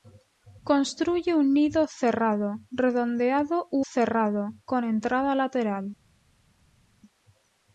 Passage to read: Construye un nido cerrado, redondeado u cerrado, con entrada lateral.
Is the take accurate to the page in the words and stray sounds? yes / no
yes